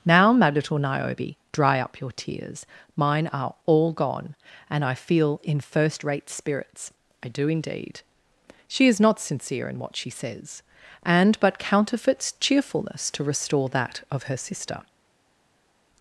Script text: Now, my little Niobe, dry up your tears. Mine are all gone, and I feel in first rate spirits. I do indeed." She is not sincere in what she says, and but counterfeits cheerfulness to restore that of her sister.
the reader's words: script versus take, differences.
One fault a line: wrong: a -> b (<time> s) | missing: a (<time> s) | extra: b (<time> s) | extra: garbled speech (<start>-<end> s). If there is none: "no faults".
no faults